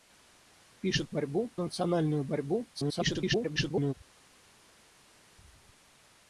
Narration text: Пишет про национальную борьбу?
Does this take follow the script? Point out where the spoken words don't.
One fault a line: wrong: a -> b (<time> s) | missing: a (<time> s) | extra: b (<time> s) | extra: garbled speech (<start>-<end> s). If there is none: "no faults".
wrong: про -> борьбу (1.1 s)
extra: garbled speech (2.7-3.9 s)